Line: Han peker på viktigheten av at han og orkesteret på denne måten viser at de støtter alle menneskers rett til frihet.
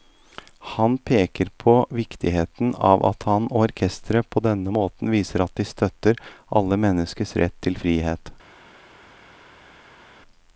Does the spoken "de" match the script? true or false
true